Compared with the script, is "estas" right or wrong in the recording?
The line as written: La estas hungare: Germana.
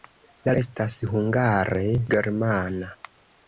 right